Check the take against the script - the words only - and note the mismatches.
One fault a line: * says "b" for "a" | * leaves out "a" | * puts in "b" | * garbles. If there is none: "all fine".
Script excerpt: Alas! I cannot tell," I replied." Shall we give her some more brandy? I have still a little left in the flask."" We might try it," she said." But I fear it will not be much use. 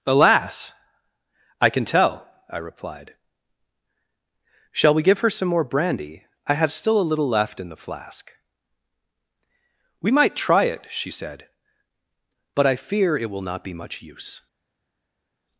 * says "can" for "cannot"